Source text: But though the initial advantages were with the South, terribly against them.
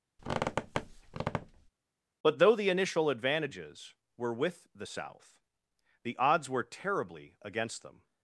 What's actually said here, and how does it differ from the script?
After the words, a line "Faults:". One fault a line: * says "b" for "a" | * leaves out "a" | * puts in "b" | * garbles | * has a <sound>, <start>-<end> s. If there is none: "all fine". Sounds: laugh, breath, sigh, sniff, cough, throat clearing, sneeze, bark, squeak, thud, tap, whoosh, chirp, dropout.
But though the initial advantages were with the South, the odds were terribly against them.
Faults:
* has a squeak, 0.2-1.7 s
* puts in "the odds were"